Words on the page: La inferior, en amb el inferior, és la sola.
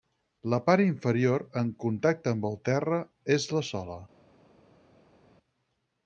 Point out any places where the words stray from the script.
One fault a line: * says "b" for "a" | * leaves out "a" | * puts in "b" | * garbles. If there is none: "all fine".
* puts in "part"
* puts in "contacte"
* says "terra" for "inferior"